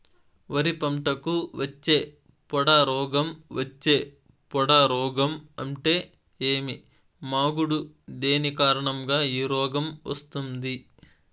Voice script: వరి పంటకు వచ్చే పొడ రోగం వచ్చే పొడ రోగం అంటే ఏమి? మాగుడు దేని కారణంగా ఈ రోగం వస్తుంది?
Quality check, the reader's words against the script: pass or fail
pass